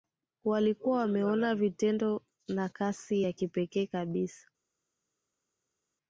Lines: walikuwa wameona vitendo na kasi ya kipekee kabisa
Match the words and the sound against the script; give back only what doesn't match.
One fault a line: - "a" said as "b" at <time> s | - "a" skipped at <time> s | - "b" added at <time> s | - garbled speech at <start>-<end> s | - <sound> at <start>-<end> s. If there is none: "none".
none